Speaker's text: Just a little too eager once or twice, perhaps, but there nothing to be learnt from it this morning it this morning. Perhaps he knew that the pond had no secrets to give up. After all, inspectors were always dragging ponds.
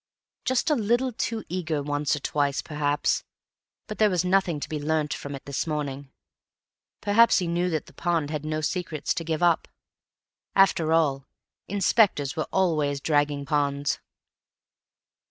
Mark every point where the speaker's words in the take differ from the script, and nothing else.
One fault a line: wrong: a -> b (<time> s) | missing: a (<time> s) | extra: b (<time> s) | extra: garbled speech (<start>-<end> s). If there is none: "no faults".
extra: was (4.1 s)
missing: it this morning (6.1 s)